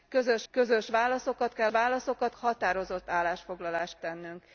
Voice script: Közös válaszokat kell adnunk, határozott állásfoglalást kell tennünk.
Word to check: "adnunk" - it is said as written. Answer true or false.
false